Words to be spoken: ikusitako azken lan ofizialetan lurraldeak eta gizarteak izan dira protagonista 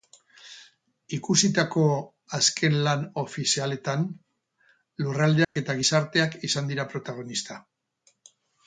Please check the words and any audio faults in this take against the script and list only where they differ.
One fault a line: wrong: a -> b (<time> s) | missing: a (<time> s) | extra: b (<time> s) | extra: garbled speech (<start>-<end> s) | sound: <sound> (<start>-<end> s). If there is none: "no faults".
sound: dropout (5.4-5.6 s)